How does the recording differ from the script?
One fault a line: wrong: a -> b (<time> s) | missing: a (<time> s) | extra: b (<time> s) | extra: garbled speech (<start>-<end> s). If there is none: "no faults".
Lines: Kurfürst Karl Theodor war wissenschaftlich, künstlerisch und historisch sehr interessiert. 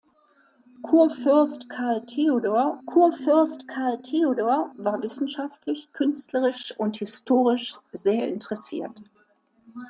extra: kurfürst Karl Theodor (2.8 s)